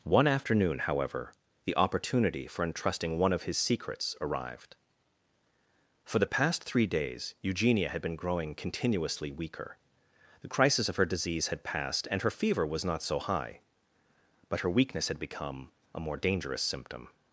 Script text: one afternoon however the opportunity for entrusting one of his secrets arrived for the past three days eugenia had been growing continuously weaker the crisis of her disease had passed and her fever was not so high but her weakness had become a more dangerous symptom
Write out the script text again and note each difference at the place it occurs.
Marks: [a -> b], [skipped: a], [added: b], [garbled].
one afternoon however the opportunity for entrusting one of his secrets arrived for the past three days eugenia had been growing continuously weaker the crisis of her disease had passed and her fever was not so high but her weakness had become a more dangerous symptom